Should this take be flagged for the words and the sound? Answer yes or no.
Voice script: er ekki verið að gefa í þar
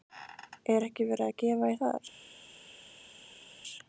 no